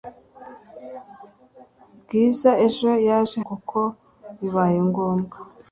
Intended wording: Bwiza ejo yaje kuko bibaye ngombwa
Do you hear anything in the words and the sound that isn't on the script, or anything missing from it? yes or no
no